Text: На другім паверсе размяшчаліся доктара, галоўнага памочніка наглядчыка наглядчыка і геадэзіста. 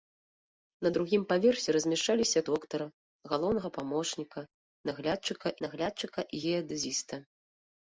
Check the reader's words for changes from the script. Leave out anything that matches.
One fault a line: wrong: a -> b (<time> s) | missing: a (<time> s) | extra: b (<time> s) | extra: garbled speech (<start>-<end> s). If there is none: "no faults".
no faults